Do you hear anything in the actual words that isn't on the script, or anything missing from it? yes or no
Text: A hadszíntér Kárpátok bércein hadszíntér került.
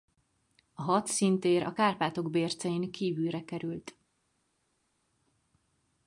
yes